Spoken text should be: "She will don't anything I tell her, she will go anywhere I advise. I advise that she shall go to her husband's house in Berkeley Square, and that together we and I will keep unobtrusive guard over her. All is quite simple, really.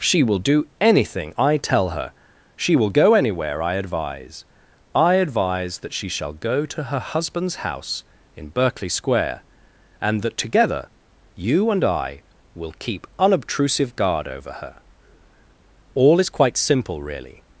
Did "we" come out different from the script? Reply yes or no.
yes